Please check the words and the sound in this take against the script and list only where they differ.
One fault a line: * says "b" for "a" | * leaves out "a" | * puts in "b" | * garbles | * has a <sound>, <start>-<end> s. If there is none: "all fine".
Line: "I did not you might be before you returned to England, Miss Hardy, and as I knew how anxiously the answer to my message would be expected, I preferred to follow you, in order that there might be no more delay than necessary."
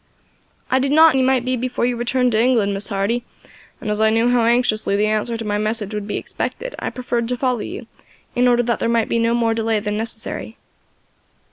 all fine